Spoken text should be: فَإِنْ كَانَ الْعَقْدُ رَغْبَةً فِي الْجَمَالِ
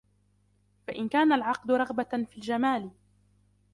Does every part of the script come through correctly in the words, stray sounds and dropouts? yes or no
yes